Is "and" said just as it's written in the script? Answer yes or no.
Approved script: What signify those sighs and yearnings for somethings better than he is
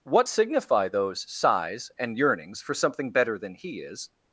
yes